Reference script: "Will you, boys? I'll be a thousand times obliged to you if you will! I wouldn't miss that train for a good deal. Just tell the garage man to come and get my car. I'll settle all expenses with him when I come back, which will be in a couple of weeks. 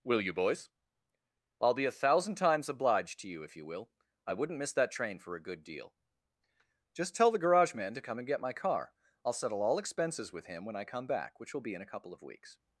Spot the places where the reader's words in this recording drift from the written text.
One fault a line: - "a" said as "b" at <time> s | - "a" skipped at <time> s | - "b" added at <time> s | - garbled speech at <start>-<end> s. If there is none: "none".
none